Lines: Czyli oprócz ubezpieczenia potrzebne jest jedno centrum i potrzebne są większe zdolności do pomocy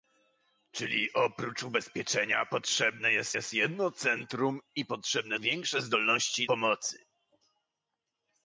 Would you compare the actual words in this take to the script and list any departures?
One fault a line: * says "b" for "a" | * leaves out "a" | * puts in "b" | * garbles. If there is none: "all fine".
* puts in "jest"
* leaves out "są"
* leaves out "do"